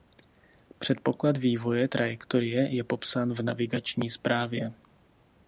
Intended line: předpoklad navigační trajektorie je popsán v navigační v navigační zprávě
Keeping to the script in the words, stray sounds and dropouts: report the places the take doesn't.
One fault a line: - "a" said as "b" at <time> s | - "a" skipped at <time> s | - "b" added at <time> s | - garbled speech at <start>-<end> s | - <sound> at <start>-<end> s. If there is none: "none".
- "navigační" said as "vývoje" at 1.4 s
- "v navigační" skipped at 4.1 s